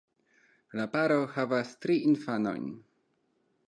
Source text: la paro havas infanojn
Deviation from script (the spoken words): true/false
true